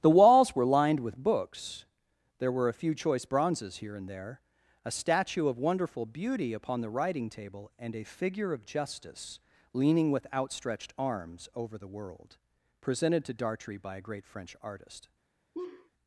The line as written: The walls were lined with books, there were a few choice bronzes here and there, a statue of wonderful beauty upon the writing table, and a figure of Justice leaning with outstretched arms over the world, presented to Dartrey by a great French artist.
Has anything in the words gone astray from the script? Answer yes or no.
no